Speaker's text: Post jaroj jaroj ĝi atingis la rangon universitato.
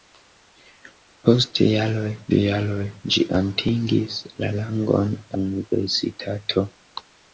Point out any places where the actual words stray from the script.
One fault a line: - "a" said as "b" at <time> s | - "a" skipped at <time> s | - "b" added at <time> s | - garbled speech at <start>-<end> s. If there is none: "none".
none